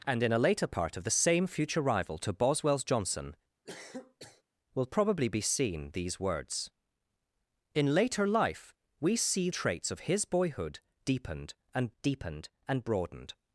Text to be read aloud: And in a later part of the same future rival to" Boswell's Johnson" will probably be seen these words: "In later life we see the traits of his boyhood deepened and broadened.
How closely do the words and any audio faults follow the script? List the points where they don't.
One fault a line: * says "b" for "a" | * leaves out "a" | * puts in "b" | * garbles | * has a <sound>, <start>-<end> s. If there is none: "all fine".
* has a cough, 3.7-4.4 s
* leaves out "the"
* puts in "deepened and"